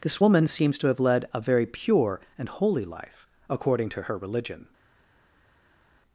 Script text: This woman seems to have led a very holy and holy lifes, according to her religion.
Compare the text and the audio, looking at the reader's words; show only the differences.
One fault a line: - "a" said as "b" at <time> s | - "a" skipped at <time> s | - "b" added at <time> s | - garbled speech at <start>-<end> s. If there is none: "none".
- "holy" said as "pure" at 1.6 s
- "lifes" said as "life" at 2.8 s